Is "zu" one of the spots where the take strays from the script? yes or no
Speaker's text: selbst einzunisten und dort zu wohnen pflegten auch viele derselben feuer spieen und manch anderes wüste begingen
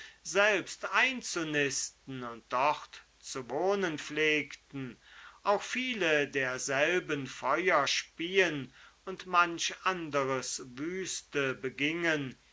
no